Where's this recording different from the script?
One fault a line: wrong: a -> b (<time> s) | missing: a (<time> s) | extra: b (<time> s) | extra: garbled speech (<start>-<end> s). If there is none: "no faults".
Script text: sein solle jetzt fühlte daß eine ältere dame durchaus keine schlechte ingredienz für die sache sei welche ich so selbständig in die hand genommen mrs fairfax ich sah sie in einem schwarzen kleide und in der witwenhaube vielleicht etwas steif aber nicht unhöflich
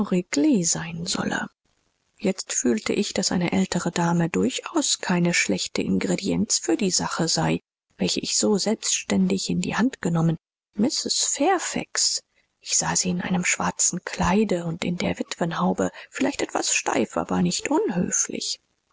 extra: ich (2.9 s)